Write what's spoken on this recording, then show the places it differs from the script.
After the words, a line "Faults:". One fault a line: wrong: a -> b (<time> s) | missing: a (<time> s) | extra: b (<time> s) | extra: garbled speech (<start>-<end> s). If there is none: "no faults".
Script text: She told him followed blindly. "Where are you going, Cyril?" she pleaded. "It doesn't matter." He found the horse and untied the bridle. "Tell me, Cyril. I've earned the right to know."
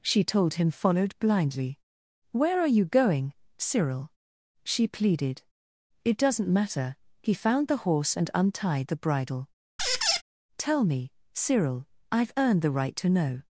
She told him followed blindly. "Where are you going, Cyril?" she pleaded. "It doesn't matter." He found the horse and untied the bridle. "Tell me, Cyril. I've earned the right to know."
Faults:
no faults